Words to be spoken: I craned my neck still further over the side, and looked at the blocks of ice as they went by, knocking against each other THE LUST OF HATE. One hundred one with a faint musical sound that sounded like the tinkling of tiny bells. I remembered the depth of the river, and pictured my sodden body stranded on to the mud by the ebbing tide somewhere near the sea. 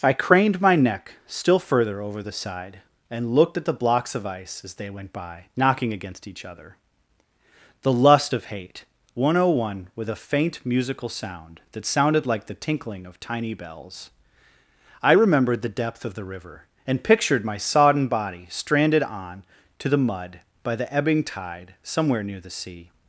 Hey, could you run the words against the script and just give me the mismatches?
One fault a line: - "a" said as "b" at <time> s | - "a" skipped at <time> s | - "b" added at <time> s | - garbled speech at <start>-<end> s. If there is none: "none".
none